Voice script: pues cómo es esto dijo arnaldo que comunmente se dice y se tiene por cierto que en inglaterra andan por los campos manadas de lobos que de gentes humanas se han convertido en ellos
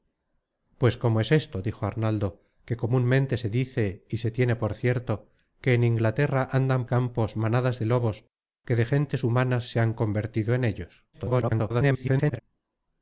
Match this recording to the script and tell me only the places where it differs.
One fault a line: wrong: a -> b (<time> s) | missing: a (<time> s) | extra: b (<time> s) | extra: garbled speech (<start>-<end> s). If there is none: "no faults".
missing: por los (6.9 s)
extra: garbled speech (11.1-12.4 s)